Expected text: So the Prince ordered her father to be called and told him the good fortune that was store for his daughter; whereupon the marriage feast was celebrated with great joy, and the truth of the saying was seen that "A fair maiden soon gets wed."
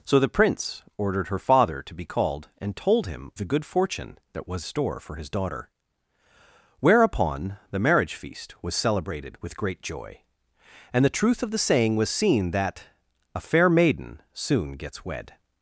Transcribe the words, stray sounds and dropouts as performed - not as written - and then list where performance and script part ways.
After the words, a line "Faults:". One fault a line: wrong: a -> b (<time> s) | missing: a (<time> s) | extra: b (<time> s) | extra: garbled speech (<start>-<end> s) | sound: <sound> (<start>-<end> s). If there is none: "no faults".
So the Prince ordered her father to be called and told him the good fortune that was store for his daughter; whereupon the marriage feast was celebrated with great joy, and the truth of the saying was seen that "A fair maiden soon gets wed."
Faults:
no faults